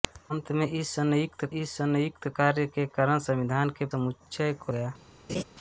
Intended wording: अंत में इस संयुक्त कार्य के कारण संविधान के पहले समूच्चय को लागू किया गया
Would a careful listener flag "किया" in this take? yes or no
yes